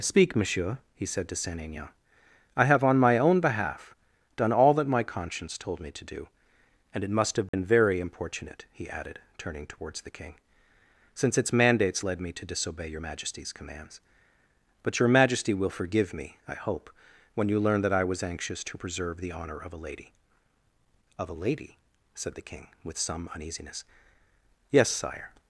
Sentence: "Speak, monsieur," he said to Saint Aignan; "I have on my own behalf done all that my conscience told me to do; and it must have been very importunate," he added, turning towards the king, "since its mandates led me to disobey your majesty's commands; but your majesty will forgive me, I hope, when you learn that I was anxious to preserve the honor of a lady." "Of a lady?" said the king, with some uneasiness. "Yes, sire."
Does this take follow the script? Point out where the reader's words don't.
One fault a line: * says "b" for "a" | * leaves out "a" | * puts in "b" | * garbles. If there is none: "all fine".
all fine